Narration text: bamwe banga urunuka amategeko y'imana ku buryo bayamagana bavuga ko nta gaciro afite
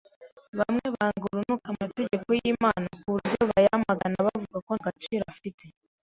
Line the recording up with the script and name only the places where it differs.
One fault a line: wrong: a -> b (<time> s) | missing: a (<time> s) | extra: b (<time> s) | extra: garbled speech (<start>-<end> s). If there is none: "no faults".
missing: nta (4.7 s)